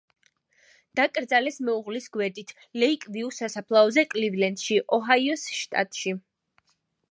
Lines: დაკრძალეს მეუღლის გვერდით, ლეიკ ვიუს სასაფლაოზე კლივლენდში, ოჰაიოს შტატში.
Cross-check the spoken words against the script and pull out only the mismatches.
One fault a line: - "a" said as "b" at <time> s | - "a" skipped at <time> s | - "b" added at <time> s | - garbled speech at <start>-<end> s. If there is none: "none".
none